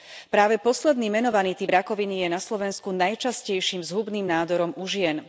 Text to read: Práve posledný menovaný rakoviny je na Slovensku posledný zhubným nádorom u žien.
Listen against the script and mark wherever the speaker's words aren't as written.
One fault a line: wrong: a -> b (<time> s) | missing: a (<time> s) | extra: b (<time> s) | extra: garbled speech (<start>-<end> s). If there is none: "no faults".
extra: typ (1.6 s)
wrong: posledný -> najčastejším (2.9 s)